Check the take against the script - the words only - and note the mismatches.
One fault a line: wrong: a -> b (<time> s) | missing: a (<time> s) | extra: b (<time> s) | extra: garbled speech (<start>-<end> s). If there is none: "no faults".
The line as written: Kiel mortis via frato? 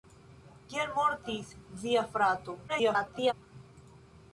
extra: garbled speech (2.7-3.3 s)